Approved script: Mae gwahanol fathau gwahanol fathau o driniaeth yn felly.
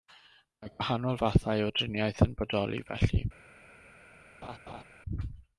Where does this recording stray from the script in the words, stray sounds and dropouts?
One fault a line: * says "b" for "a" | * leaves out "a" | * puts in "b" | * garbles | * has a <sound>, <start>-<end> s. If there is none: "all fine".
* leaves out "gwahanol fathau"
* puts in "bodoli"
* has a laugh, 4.4-4.8 s